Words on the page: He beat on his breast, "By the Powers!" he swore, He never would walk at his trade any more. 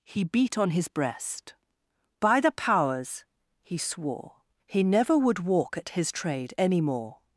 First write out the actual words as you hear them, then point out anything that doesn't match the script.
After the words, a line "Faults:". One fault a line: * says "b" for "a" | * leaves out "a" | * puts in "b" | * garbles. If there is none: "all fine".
He beat on his breast, "By the Powers!" he swore, He never would walk at his trade any more.
Faults:
all fine